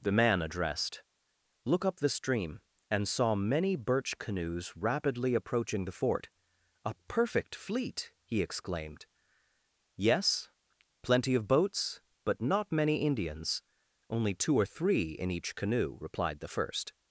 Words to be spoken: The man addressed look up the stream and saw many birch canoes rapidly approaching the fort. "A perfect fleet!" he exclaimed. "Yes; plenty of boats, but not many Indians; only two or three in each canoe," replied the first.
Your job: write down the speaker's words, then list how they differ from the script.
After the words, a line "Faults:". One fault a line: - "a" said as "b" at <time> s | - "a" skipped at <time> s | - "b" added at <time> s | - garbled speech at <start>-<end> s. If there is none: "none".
The man addressed look up the stream and saw many birch canoes rapidly approaching the fort. "A perfect fleet!" he exclaimed. "Yes; plenty of boats, but not many Indians; only two or three in each canoe," replied the first.
Faults:
none